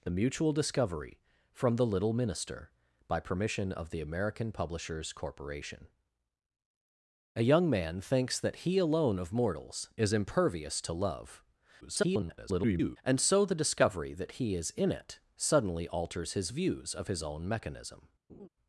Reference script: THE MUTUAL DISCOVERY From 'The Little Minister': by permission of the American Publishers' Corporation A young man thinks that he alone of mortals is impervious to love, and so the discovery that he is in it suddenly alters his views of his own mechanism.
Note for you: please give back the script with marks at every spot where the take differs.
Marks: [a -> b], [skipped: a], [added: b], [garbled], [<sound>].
THE MUTUAL DISCOVERY From 'The Little Minister': by permission of the American Publishers' Corporation A young man thinks that he alone of mortals is impervious to love, [garbled] and so the discovery that he is in it suddenly alters his views of his own mechanism. [laugh]